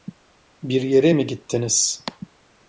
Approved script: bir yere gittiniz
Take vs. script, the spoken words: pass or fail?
fail